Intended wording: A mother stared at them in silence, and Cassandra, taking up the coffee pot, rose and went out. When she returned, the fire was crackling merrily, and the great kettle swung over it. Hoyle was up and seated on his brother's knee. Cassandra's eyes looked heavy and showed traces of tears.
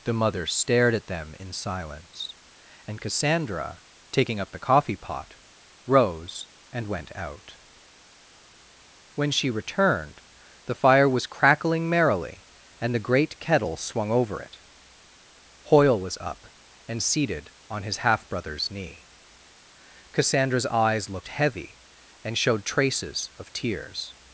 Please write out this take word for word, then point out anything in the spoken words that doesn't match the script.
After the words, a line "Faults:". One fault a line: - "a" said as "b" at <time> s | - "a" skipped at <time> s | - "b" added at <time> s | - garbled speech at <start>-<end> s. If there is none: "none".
The mother stared at them in silence, and Cassandra, taking up the coffee pot, rose and went out. When she returned, the fire was crackling merrily, and the great kettle swung over it. Hoyle was up and seated on his half brother's knee. Cassandra's eyes looked heavy and showed traces of tears.
Faults:
- "A" said as "The" at 0.0 s
- "half" added at 18.0 s